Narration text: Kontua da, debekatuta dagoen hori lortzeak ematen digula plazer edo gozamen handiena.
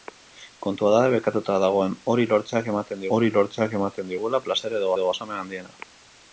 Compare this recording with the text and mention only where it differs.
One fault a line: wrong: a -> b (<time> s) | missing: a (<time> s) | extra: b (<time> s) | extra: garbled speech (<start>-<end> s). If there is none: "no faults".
extra: hori lortzeak ematen (3.2 s)
extra: edo (5.0 s)